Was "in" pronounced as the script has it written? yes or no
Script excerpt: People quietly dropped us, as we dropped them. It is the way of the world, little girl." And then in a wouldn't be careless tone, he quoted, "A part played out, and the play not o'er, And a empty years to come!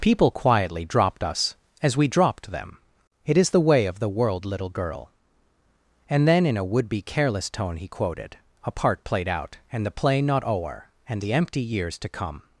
yes